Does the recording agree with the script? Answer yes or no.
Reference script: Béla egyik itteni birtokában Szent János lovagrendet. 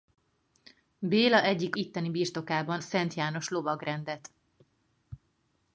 yes